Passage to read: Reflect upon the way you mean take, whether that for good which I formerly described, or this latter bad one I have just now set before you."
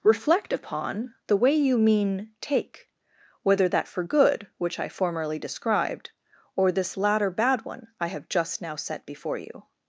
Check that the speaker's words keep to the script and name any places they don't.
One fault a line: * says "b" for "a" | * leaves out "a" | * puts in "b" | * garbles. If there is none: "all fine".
all fine